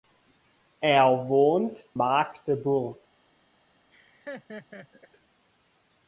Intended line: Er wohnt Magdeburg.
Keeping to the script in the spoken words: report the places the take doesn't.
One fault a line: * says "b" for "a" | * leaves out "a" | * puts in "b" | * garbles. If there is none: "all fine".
all fine